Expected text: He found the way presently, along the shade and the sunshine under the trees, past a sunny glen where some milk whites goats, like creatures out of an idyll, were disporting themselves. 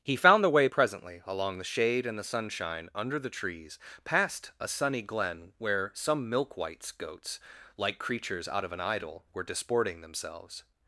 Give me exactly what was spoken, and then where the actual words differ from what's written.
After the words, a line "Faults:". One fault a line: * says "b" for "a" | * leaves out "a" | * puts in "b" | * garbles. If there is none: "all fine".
He found the way presently, along the shade and the sunshine under the trees, past a sunny glen where some milk whites goats, like creatures out of an idyll, were disporting themselves.
Faults:
all fine